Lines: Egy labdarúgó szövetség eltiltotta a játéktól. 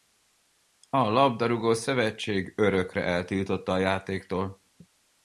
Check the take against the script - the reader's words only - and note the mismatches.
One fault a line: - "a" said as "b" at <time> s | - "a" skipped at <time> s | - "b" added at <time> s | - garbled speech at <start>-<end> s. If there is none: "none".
- "Egy" said as "A" at 0.9 s
- "örökre" added at 2.6 s